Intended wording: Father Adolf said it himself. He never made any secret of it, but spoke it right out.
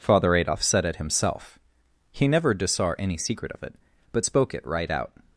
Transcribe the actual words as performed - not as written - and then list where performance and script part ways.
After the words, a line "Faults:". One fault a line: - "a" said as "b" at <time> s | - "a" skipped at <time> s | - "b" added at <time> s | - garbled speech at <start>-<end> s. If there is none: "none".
Father Adolf said it himself. He never disar any secret of it, but spoke it right out.
Faults:
- "made" said as "disar" at 2.5 s